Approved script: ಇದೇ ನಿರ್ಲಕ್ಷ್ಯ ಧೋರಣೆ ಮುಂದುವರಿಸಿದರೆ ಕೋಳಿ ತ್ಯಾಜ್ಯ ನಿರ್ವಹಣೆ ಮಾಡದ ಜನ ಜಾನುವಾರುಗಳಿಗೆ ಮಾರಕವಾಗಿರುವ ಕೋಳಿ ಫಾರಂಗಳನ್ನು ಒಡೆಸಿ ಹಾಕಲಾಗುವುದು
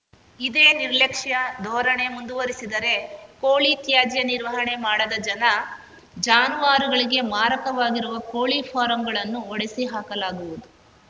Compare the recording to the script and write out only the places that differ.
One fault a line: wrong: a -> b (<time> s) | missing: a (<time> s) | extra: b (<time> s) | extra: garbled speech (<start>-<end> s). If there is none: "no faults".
no faults